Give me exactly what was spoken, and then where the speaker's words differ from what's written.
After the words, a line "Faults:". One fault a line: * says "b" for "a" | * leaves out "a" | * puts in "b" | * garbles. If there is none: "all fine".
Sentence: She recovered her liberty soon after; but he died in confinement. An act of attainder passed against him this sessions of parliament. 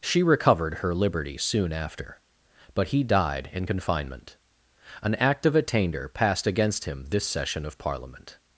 She recovered her liberty soon after; but he died in confinement. An act of attainder passed against him this session of parliament.
Faults:
* says "session" for "sessions"